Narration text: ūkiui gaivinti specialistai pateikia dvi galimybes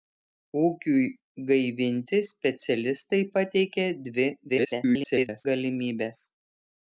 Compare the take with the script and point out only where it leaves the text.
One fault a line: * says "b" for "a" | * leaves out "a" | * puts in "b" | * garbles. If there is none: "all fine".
* garbles